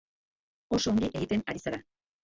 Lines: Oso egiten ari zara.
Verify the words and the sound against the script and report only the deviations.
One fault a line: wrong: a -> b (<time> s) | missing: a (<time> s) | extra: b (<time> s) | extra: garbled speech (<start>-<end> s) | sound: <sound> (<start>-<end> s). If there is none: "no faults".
extra: ongi (0.9 s)